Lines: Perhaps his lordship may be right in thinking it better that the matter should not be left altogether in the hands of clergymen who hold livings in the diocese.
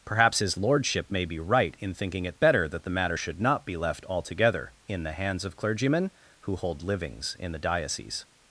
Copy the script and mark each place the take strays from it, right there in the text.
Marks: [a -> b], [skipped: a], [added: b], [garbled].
Perhaps his lordship may be right in thinking it better that the matter should not be left altogether in the hands of clergymen who hold livings in the diocese.